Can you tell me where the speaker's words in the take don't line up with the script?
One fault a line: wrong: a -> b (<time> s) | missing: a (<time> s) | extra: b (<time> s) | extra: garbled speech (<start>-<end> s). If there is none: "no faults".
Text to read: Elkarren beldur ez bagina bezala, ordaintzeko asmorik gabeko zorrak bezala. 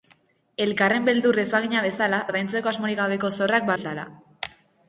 no faults